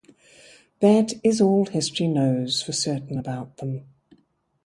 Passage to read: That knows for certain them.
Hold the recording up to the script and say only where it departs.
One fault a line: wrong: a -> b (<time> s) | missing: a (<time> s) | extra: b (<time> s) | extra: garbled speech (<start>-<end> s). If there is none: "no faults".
extra: is all history (1.2 s)
extra: about (3.2 s)